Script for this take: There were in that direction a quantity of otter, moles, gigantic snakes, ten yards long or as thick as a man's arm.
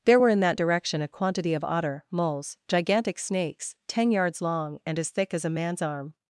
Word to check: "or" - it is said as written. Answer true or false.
false